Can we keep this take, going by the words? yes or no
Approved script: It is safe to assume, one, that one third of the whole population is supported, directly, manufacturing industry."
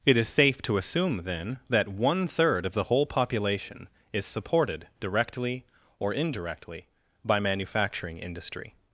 no